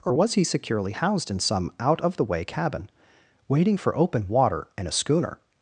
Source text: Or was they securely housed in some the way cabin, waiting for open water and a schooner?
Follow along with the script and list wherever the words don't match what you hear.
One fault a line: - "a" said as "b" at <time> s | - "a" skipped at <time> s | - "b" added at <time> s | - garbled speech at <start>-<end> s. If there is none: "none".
- "they" said as "he" at 0.3 s
- "out of" added at 1.8 s